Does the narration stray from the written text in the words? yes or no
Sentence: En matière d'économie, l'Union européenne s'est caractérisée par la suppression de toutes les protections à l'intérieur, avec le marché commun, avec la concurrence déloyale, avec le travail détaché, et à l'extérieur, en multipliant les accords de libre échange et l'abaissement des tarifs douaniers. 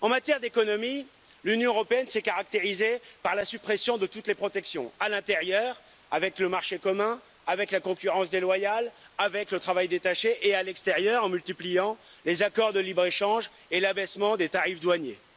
no